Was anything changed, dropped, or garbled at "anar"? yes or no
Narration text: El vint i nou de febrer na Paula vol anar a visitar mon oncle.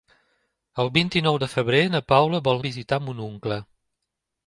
yes